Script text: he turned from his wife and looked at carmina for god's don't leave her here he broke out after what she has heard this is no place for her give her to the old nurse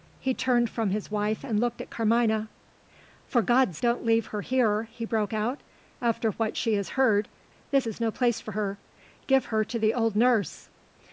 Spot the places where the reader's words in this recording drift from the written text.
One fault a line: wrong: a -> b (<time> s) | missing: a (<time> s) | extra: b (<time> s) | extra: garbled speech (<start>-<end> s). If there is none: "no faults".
no faults